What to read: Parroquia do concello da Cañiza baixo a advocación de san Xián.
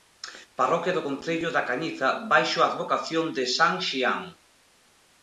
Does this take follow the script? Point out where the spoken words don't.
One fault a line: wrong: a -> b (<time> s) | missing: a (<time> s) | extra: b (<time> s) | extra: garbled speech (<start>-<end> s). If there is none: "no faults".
no faults